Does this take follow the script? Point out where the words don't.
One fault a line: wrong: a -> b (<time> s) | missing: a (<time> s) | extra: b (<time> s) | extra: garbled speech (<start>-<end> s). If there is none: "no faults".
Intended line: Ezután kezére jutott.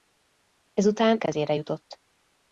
no faults